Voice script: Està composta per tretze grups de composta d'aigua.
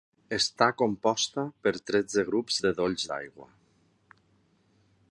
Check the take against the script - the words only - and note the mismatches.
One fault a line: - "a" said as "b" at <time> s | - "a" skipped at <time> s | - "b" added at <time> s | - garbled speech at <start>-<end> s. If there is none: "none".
- "composta" said as "dolls" at 2.8 s